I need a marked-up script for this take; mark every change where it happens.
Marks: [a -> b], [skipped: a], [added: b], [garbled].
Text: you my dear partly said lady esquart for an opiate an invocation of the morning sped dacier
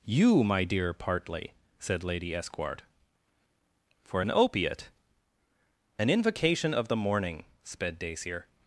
you my dear partly said lady esquart for an opiate an invocation of the morning sped dacier